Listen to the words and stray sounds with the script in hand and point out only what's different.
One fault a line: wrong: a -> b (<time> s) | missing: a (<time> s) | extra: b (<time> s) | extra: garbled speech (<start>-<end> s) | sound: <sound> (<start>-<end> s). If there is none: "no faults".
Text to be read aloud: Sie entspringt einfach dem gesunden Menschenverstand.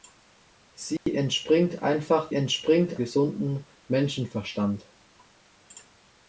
sound: dropout (1.0-1.1 s)
wrong: dem -> entspringt (2.3 s)